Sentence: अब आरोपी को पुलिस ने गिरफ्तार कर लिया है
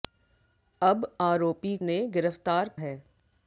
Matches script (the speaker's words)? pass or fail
fail